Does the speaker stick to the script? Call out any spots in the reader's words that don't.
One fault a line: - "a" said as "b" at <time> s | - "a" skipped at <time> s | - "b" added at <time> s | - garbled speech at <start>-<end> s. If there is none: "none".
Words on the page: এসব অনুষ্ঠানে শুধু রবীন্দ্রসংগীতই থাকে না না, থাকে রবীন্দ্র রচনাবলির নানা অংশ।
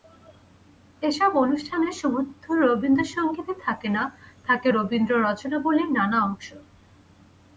- "না" skipped at 4.0 s